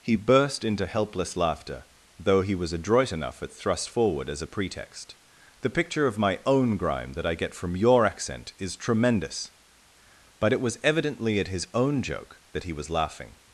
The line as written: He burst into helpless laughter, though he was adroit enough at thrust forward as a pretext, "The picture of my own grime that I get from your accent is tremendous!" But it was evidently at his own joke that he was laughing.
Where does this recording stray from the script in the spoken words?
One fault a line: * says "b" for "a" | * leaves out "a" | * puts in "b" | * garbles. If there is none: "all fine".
all fine